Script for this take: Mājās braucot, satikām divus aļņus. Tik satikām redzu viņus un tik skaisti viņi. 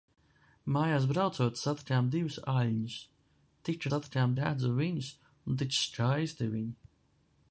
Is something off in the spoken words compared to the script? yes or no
no